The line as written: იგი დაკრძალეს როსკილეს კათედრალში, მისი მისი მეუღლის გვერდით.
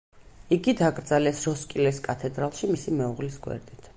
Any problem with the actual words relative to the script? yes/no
yes